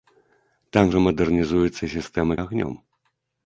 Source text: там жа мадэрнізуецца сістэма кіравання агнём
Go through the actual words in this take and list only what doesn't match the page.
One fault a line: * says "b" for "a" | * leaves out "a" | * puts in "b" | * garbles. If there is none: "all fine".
* leaves out "кіравання"